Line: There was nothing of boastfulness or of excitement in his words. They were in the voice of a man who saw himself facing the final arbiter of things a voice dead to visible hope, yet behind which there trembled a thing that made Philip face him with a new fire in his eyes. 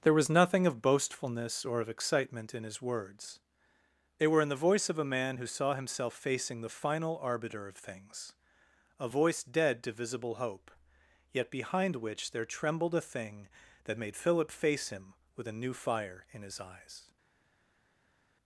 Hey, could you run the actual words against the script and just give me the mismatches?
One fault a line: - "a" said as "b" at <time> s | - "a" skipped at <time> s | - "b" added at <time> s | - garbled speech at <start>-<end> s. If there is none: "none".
none